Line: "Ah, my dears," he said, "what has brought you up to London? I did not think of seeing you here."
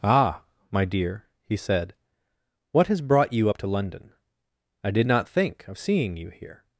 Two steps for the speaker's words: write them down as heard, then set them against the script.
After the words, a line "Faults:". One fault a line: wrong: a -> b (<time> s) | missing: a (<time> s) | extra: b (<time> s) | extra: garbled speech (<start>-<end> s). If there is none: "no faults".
"Ah, my dear," he said, "what has brought you up to London? I did not think of seeing you here."
Faults:
wrong: dears -> dear (0.8 s)